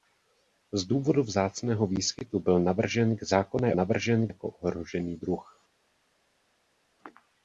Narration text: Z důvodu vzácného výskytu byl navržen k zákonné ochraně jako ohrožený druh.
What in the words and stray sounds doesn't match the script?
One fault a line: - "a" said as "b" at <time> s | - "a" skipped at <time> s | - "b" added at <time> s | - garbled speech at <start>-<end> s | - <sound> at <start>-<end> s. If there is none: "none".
- "ochraně" said as "navržen" at 3.7 s